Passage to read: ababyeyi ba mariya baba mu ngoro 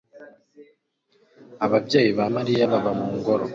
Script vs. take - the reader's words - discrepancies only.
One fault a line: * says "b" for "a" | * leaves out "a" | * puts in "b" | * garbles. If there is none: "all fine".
all fine